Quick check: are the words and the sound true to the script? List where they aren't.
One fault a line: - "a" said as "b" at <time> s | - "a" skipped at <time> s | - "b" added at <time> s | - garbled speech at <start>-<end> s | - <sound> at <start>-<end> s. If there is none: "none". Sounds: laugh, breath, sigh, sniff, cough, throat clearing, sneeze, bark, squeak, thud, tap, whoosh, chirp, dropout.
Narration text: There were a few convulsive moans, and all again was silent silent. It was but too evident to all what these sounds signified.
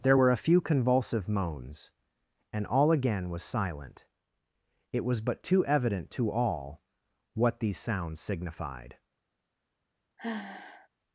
- "silent" skipped at 4.1 s
- sigh at 10.2-10.9 s